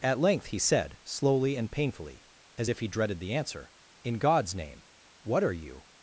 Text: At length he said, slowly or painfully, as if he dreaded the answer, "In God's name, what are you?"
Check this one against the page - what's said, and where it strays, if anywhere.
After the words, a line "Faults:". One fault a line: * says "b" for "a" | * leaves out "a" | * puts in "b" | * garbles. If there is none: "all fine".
At length he said, slowly and painfully, as if he dreaded the answer, "In God's name, what are you?"
Faults:
* says "and" for "or"